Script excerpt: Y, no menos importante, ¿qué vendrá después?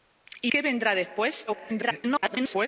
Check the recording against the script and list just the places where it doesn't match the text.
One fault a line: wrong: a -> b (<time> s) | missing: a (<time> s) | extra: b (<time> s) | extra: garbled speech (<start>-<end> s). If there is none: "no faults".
missing: no menos importante (0.5 s)
extra: garbled speech (1.5-2.7 s)